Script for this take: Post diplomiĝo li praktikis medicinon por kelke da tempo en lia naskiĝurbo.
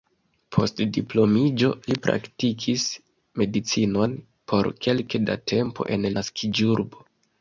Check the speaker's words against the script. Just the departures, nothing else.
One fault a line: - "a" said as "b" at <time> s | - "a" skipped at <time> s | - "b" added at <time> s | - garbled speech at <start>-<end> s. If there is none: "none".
- "lia" skipped at 6.1 s